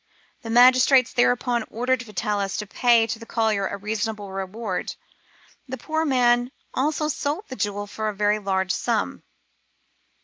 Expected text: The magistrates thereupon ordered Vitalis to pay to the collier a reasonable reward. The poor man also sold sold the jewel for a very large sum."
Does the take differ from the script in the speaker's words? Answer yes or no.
yes